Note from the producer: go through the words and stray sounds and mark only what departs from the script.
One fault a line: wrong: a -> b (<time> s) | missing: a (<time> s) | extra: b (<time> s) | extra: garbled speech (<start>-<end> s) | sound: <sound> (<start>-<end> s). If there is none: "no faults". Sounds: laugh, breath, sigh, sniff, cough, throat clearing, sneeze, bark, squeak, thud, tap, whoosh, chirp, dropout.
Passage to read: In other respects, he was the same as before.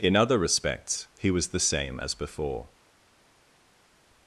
no faults